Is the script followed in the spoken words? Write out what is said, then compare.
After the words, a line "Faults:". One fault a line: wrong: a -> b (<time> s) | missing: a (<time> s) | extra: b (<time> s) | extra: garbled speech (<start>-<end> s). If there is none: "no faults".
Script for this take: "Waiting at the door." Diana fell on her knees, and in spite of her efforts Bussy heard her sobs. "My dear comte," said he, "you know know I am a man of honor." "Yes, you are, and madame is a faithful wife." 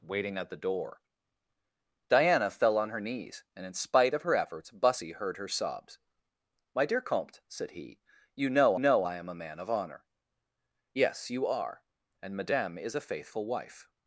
"Waiting at the door." Diana fell on her knees, and in spite of her efforts Bussy heard her sobs. "My dear comte," said he, "you know know I am a man of honor." "Yes, you are, and madame is a faithful wife."
Faults:
no faults